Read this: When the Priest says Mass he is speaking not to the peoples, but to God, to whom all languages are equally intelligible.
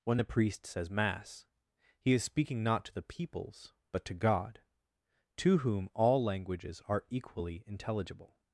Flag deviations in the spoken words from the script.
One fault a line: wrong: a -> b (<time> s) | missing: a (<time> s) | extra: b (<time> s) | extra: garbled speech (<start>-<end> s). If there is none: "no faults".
no faults